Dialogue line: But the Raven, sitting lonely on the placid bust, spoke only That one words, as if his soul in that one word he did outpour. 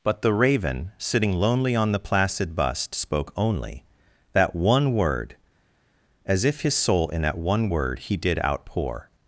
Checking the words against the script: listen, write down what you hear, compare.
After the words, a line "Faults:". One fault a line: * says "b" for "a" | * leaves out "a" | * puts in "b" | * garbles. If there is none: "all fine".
But the Raven, sitting lonely on the placid bust, spoke only That one word, as if his soul in that one word he did outpour.
Faults:
* says "word" for "words"